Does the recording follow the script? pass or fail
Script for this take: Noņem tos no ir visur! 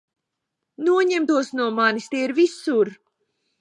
fail